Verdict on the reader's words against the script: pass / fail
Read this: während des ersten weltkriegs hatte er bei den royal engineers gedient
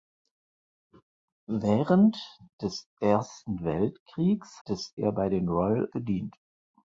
fail